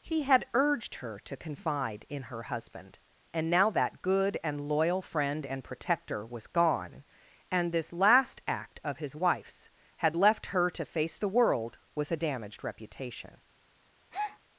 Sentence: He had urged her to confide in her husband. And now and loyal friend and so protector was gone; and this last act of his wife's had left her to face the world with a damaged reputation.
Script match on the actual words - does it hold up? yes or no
no